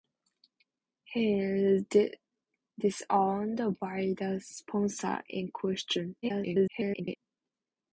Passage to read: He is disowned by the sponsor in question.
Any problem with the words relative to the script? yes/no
yes